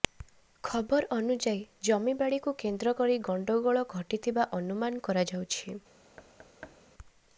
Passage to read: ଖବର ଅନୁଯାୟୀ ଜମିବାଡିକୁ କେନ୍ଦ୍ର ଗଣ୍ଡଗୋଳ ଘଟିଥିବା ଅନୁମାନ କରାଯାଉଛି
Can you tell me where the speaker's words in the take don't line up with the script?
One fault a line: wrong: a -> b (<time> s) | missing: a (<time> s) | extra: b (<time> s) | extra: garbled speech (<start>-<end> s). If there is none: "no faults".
extra: କରି (3.0 s)